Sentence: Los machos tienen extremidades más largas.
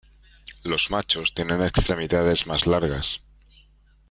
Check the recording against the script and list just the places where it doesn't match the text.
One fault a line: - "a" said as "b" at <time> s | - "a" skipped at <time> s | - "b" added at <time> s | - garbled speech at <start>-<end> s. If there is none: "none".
none